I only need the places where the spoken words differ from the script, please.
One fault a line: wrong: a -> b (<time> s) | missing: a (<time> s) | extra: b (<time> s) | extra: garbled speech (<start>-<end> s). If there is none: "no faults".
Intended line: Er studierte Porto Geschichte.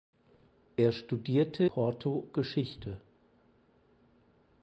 no faults